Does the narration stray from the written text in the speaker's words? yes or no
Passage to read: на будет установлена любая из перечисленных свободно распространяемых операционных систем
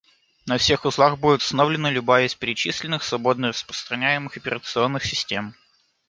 yes